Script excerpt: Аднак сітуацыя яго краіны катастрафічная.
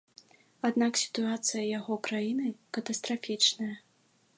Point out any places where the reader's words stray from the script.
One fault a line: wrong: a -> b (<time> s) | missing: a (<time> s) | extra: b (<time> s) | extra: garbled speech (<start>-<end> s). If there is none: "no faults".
no faults